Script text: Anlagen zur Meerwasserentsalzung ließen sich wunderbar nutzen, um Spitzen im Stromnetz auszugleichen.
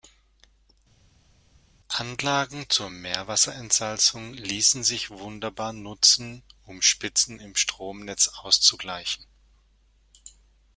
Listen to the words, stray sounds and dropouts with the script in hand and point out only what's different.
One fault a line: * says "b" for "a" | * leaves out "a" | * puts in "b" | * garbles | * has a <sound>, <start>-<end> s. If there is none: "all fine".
all fine